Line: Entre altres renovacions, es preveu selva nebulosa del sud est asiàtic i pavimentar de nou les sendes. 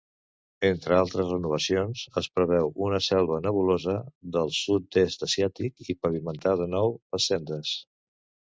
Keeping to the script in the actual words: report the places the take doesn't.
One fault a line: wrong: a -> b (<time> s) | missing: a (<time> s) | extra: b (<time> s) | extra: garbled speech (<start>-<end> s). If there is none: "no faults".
extra: una (2.9 s)